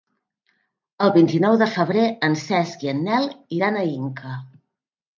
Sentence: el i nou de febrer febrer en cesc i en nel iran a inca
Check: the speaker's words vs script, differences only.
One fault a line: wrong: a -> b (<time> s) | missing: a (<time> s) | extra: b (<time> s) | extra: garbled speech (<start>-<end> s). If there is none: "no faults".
extra: vint (1.2 s)
missing: febrer (2.1 s)